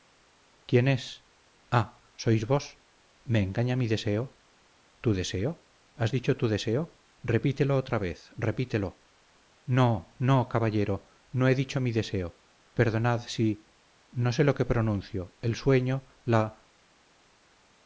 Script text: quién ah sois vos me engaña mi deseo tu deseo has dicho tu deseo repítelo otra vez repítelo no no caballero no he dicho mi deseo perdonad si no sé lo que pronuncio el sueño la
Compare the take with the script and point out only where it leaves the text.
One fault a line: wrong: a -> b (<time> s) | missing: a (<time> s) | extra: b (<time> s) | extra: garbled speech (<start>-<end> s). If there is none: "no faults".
extra: es (0.9 s)